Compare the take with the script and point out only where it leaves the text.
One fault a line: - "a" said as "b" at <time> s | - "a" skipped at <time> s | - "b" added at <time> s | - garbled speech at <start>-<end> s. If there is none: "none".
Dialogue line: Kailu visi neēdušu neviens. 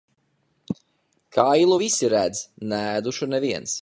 - "redz" added at 2.1 s